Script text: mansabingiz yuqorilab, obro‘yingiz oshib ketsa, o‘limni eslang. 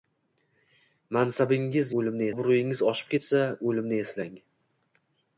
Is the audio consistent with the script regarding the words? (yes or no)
no